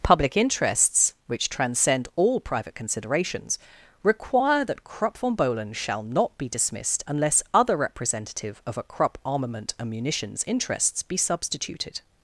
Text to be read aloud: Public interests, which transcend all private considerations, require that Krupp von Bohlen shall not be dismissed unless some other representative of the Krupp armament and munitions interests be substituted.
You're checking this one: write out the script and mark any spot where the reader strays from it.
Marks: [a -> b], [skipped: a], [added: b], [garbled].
Public interests, which transcend all private considerations, require that Krupp von Bohlen shall not be dismissed unless [skipped: some] other representative of [the -> a] Krupp armament and munitions interests be substituted.